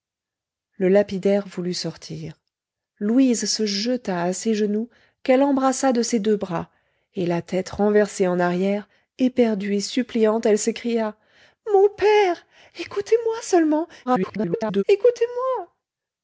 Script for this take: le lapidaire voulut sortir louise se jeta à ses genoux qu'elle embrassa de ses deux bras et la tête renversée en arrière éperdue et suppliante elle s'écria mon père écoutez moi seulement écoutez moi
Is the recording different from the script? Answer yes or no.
yes